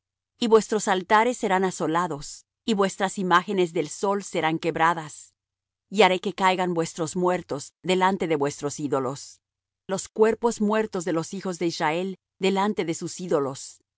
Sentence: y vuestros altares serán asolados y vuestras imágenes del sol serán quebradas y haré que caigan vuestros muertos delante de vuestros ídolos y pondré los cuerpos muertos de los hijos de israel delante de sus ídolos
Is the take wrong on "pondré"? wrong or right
wrong